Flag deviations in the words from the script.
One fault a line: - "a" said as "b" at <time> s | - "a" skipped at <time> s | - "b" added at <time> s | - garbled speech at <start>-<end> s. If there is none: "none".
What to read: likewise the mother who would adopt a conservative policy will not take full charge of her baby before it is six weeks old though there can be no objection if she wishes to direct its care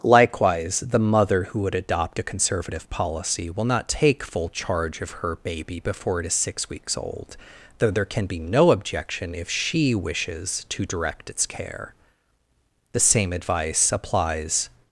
- "the same advice applies" added at 12.9 s